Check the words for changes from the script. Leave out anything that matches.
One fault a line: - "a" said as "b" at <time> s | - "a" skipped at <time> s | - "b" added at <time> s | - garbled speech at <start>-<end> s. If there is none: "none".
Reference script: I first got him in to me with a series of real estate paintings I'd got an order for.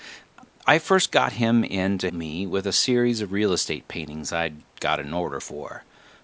none